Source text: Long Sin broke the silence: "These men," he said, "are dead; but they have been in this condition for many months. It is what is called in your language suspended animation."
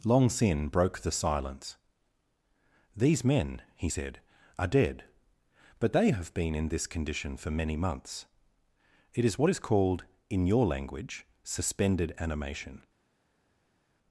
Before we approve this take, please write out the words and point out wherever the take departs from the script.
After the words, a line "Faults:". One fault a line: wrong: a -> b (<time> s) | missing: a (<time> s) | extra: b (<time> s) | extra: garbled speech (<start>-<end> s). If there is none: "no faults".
Long Sin broke the silence: "These men," he said, "are dead; but they have been in this condition for many months. It is what is called in your language suspended animation."
Faults:
no faults